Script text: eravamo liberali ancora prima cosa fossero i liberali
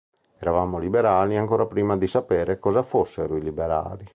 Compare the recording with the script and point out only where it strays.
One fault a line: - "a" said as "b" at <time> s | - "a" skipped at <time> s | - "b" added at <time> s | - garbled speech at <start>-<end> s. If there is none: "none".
- "di sapere" added at 1.9 s